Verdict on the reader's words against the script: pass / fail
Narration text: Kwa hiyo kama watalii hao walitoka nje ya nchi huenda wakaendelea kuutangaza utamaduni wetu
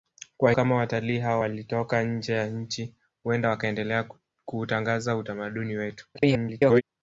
fail